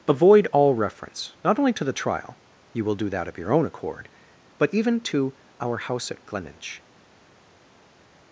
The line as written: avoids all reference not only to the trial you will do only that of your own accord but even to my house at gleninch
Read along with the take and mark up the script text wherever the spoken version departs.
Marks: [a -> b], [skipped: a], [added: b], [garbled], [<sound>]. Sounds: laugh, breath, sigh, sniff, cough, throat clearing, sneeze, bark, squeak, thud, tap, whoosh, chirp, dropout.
[avoids -> avoid] all reference not only to the trial you will do [skipped: only] that of your own accord but even to [my -> our] house at gleninch